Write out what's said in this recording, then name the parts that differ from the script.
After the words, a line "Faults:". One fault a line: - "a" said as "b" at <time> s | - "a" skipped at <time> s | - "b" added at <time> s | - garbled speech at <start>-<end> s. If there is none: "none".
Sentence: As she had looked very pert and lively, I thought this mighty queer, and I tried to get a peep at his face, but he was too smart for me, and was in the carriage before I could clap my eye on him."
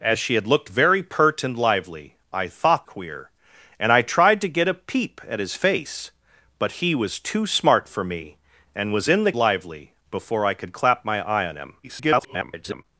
As she had looked very pert and lively, I thought queer, and I tried to get a peep at his face, but he was too smart for me, and was in the lively before I could clap my eye on him." [garbled]
Faults:
- "this mighty" skipped at 2.9 s
- "carriage" said as "lively" at 9.3 s
- garbled speech at 11.8-12.8 s